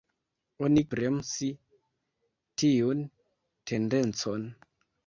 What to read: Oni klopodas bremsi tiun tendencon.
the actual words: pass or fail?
fail